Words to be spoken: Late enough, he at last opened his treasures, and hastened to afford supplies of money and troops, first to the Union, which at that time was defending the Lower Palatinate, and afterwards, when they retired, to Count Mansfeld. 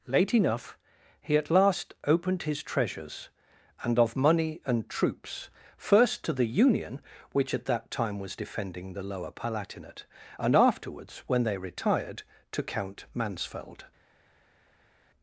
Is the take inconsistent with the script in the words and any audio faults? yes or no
yes